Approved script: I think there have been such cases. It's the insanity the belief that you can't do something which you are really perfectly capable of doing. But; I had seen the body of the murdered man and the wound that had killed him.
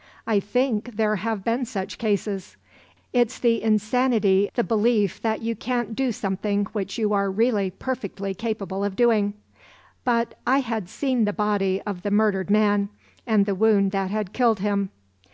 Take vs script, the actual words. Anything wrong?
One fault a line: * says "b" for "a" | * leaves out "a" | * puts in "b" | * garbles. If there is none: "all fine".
all fine